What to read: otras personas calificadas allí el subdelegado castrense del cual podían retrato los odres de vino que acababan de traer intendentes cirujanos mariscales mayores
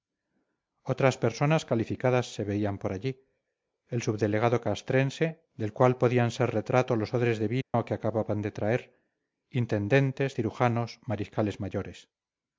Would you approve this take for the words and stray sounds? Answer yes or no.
no